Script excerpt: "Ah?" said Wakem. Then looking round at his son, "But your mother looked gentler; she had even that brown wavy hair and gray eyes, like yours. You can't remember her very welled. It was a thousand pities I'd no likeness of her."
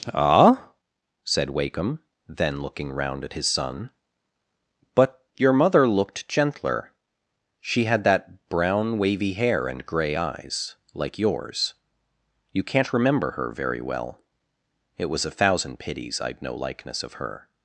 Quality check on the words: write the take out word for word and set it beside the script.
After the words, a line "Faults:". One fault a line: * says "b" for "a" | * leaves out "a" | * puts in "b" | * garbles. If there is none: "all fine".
"Ah?" said Wakem. Then looking round at his son, "But your mother looked gentler; she had that brown wavy hair and gray eyes, like yours. You can't remember her very well. It was a thousand pities I'd no likeness of her."
Faults:
* leaves out "even"
* says "well" for "welled"